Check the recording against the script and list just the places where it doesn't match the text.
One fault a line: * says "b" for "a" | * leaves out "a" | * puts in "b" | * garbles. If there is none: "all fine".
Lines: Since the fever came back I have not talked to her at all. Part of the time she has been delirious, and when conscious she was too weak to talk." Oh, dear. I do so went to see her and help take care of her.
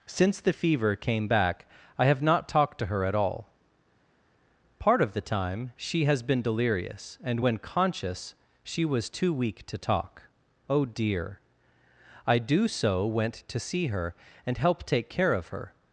all fine